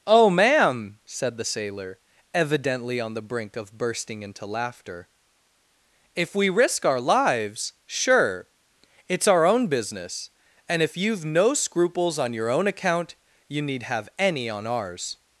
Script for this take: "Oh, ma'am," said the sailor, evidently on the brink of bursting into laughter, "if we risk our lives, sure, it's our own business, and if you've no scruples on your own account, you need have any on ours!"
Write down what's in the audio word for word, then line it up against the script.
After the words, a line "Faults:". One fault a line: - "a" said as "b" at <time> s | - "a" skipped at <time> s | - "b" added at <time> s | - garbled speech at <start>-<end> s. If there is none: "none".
"Oh, ma'am," said the sailor, evidently on the brink of bursting into laughter, "if we risk our lives, sure, it's our own business, and if you've no scruples on your own account, you need have any on ours!"
Faults:
none